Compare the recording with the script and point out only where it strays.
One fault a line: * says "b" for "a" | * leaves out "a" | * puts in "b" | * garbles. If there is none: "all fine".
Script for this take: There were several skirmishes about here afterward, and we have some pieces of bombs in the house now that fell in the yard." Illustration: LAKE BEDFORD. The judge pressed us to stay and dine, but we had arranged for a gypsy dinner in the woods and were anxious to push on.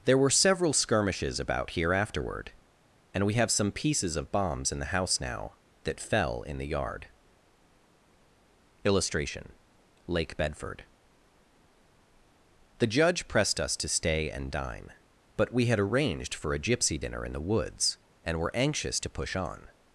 all fine